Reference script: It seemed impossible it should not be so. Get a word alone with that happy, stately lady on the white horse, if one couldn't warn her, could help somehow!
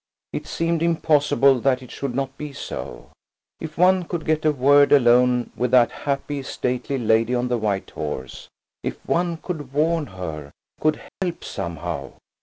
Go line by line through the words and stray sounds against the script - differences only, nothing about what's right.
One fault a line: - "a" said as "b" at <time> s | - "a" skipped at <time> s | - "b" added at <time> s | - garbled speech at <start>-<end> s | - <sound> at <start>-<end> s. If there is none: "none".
- "that" added at 1.6 s
- "If one could" added at 3.6 s
- "couldn't" said as "could" at 9.4 s
- dropout at 11.1-11.2 s